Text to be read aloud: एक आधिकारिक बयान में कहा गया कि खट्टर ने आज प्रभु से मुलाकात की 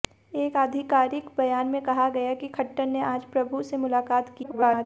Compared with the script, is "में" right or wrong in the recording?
right